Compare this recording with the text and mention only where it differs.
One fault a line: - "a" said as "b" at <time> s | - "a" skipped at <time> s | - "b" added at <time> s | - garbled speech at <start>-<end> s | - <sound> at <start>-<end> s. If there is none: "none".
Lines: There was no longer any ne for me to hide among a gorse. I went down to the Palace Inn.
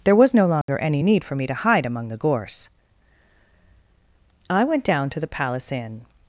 - dropout at 0.6-0.7 s
- "ne" said as "need" at 1.0 s
- "a" said as "the" at 2.1 s